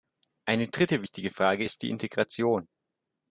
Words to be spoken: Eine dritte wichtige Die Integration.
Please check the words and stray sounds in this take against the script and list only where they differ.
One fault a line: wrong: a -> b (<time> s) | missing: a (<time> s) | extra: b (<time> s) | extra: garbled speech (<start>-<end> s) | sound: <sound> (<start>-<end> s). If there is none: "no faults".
extra: Frage ist (1.3 s)